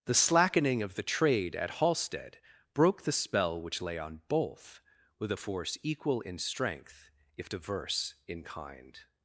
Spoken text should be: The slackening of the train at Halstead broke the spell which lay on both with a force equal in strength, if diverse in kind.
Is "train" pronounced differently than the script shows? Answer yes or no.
yes